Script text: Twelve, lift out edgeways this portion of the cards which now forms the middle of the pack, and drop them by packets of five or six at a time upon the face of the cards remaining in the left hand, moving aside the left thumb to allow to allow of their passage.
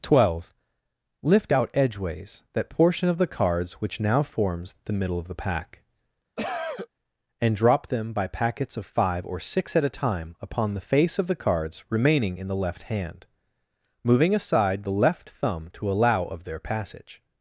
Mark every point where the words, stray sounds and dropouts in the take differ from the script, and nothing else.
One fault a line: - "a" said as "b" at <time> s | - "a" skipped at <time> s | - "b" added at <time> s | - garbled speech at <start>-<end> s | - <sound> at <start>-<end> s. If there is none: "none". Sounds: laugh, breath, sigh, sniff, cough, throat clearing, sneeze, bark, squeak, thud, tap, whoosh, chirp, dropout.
- "this" said as "that" at 2.5 s
- cough at 6.4-6.9 s
- "to allow" skipped at 16.2 s